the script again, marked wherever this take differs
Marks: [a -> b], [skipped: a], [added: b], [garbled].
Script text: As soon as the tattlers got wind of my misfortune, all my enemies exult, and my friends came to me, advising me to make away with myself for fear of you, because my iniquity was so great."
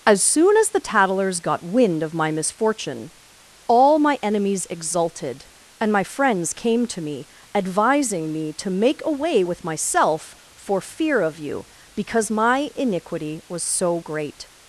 As soon as the tattlers got wind of my misfortune, all my enemies [exult, -> exulted] and my friends came to me, advising me to make away with myself for fear of you, because my iniquity was so great."